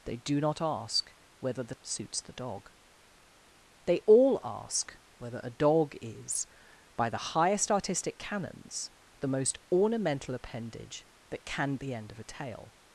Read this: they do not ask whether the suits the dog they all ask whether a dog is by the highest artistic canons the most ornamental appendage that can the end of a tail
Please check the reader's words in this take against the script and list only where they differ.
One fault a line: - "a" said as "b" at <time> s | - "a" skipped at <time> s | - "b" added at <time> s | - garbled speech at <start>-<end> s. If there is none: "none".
none